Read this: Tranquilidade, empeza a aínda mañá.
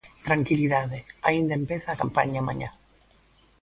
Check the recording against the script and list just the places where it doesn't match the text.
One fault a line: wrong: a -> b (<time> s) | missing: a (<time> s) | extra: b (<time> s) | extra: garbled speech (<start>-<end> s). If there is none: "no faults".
extra: aínda (1.3 s)
wrong: aínda -> campaña (2.0 s)